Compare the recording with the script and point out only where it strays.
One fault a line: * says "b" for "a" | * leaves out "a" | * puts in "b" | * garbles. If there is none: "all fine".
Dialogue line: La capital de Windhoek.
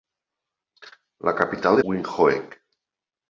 all fine